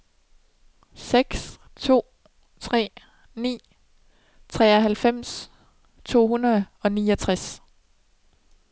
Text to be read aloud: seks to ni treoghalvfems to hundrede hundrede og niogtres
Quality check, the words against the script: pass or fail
fail